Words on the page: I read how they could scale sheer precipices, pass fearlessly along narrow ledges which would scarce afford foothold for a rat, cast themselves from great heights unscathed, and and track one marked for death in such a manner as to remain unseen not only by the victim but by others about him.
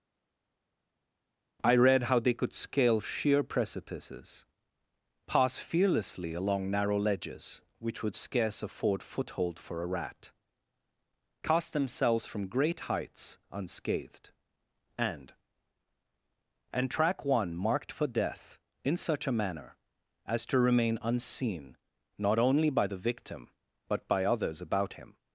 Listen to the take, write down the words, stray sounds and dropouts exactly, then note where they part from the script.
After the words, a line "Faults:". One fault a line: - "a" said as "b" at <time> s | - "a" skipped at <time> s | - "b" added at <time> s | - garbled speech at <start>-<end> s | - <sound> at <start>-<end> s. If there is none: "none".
I read how they could scale sheer precipices, pass fearlessly along narrow ledges which would scarce afford foothold for a rat, cast themselves from great heights unscathed, and and track one marked for death in such a manner as to remain unseen not only by the victim but by others about him.
Faults:
none